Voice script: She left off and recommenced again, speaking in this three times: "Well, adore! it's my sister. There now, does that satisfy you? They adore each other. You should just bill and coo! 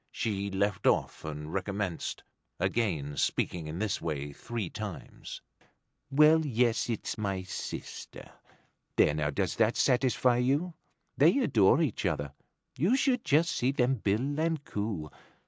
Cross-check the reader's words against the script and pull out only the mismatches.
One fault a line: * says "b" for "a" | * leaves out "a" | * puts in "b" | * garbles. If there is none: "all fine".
* puts in "way"
* says "yes" for "adore"
* puts in "see them"